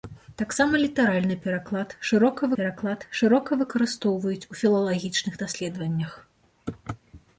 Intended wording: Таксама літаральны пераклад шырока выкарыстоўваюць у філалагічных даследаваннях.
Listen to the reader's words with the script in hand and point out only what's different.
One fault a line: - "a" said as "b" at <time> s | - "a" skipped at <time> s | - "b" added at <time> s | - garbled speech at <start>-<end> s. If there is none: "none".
- "пераклад шырока" added at 2.6 s